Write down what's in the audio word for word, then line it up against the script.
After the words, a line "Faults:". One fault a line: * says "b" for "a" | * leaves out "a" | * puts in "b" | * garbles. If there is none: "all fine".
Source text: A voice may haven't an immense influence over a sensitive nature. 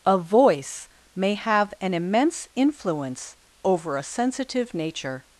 A voice may have an immense influence over a sensitive nature.
Faults:
* says "have" for "haven't"